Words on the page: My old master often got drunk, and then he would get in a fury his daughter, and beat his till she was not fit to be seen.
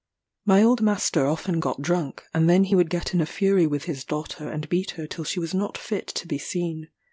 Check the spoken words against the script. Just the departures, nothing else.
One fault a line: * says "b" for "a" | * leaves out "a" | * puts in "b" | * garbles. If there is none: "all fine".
* puts in "with"
* says "her" for "his"